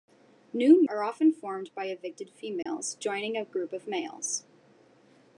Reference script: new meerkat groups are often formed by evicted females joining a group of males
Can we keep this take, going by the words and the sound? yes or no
no